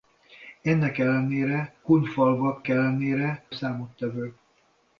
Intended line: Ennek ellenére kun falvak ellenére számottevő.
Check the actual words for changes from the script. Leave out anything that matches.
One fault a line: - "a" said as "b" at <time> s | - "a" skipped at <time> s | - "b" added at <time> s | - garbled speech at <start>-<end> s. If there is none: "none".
none